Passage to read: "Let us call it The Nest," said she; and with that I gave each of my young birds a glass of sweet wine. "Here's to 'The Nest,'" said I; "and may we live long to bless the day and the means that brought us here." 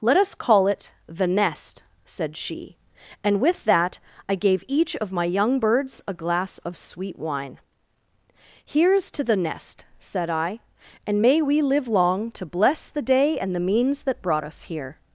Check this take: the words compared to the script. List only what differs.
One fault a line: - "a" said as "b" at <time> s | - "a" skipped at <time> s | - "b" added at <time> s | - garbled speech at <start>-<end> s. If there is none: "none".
none